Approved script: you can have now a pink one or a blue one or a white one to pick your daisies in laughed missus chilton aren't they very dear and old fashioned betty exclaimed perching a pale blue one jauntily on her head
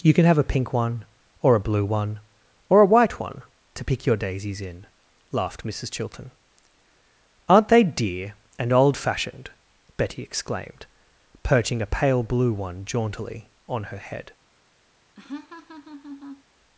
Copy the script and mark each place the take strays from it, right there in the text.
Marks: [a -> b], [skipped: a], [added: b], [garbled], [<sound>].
you can have [skipped: now] a pink one or a blue one or a white one to pick your daisies in laughed missus chilton aren't they [skipped: very] dear and old fashioned betty exclaimed perching a pale blue one jauntily on her head [laugh]